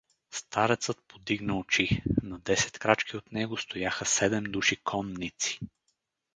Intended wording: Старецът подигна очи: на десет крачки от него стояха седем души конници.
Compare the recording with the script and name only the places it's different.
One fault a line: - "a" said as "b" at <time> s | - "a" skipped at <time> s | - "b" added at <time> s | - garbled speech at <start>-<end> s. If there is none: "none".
none